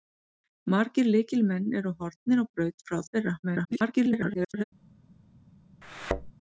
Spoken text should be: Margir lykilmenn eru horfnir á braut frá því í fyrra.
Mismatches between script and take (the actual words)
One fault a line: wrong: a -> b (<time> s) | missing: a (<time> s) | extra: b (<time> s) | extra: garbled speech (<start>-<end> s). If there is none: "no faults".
missing: því (3.0 s)
extra: garbled speech (3.4-4.6 s)